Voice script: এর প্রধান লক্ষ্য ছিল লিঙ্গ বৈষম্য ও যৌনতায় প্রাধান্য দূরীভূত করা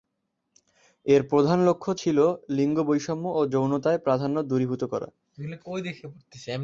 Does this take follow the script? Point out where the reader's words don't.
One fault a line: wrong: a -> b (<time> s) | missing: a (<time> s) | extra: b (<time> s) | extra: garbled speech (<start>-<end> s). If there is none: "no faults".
no faults